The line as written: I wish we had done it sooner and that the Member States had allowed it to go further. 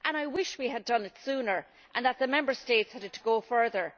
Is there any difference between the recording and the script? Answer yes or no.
yes